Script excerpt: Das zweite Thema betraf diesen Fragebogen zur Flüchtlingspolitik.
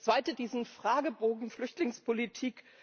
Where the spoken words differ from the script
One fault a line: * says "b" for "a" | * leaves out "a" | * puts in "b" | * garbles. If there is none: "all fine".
* leaves out "Thema betraf"
* leaves out "zur"